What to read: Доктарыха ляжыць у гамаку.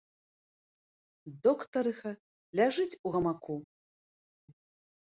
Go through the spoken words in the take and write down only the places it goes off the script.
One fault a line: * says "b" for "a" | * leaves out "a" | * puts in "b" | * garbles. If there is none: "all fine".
all fine